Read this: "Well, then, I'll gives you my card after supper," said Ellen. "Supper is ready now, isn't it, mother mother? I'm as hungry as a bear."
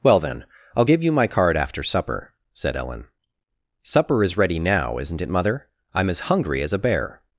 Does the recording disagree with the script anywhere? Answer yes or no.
yes